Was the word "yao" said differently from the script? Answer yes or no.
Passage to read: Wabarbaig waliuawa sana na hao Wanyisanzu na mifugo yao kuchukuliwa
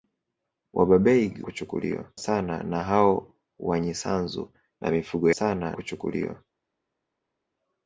yes